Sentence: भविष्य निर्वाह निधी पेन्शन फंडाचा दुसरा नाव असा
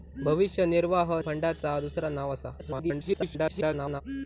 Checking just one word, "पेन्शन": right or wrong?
wrong